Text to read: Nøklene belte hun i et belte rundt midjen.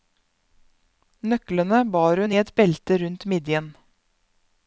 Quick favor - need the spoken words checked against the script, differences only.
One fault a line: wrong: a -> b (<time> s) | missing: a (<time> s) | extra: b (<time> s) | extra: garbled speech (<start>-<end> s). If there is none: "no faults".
wrong: belte -> bar (2.0 s)